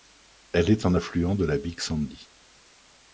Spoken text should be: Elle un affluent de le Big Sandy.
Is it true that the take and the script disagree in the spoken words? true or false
true